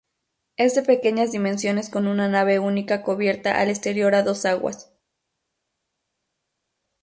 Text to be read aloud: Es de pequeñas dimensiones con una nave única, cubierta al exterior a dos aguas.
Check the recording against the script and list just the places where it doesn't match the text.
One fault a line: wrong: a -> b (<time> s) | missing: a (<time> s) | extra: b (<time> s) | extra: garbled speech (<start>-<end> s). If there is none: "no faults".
no faults